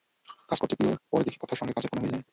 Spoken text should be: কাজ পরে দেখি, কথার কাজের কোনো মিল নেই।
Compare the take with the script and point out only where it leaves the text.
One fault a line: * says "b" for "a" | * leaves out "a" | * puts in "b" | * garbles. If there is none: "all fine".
* puts in "করতে গিয়ে"
* puts in "সঙ্গে"